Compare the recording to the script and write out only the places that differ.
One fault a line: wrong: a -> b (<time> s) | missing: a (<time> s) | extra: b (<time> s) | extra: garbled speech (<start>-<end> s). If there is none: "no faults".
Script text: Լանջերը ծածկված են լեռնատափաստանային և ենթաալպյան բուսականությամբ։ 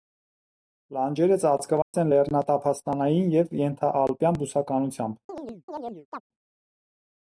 no faults